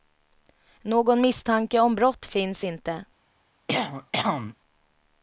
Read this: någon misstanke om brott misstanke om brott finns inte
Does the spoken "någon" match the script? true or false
true